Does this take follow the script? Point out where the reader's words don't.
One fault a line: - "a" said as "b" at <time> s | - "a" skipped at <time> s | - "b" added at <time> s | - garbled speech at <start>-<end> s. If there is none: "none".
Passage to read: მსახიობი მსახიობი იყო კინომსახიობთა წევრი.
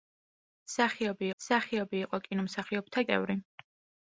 none